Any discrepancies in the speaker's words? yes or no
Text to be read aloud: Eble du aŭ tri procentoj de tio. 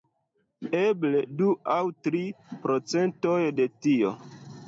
no